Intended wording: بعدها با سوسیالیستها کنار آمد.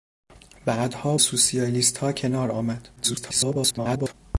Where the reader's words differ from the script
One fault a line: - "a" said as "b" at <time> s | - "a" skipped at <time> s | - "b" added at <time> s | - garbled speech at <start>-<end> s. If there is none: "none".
- "با" skipped at 1.2 s
- garbled speech at 3.0-4.1 s